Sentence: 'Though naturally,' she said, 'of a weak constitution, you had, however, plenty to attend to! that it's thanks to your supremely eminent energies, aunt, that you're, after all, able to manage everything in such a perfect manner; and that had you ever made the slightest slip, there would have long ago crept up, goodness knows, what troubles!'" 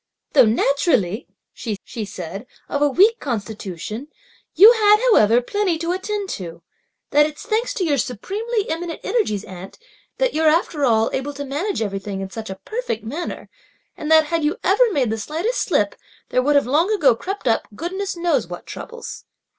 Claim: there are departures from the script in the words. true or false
true